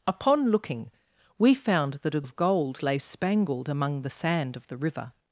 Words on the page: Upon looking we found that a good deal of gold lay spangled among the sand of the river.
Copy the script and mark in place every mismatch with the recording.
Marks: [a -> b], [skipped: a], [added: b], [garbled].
Upon looking we found that a [skipped: good deal] of gold lay spangled among the sand of the river.